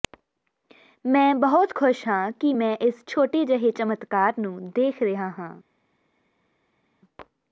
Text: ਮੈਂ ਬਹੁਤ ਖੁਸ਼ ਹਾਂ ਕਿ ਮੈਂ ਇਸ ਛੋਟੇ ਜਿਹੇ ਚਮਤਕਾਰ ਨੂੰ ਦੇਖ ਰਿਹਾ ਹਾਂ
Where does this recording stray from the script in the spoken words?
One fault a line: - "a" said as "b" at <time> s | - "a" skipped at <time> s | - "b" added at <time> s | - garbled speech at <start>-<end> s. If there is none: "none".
none